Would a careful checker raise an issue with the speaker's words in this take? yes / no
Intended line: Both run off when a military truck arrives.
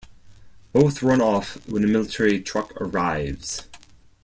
no